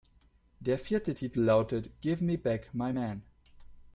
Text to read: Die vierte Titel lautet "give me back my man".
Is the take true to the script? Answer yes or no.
no